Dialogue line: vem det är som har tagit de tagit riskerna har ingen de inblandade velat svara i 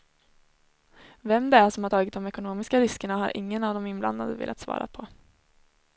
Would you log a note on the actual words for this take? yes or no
yes